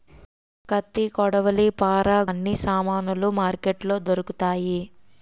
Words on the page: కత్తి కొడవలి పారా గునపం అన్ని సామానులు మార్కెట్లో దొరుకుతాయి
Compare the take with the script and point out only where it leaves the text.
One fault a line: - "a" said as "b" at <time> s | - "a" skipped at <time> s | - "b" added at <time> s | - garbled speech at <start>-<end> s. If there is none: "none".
- "గునపం" skipped at 2.2 s